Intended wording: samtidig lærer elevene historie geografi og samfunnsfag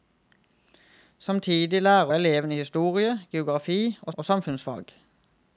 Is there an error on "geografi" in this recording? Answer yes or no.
no